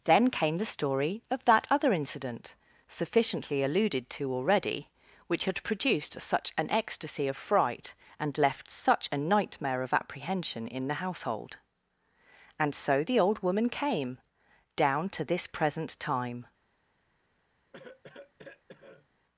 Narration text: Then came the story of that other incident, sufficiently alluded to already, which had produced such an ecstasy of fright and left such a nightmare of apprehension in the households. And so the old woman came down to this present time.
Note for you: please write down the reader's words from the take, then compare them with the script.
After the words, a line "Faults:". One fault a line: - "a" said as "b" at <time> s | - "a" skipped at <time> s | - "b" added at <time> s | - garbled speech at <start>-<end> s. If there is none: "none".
Then came the story of that other incident, sufficiently alluded to already, which had produced such an ecstasy of fright and left such a nightmare of apprehension in the household. And so the old woman came down to this present time.
Faults:
- "households" said as "household" at 10.9 s